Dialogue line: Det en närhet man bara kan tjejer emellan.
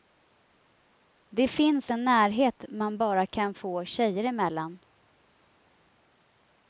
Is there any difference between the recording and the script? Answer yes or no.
yes